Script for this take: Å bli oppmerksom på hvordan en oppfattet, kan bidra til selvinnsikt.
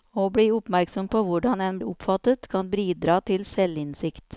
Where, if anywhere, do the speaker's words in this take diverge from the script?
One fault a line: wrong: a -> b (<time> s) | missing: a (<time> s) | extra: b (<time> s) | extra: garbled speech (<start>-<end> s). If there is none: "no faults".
no faults